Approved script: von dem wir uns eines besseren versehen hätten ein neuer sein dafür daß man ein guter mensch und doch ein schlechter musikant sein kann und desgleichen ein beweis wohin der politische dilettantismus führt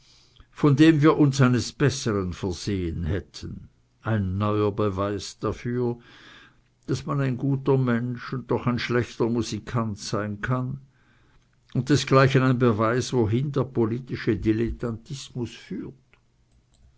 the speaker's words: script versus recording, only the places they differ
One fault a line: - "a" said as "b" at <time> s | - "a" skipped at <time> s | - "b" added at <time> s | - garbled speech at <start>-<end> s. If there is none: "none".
- "sein" said as "beweis" at 4.7 s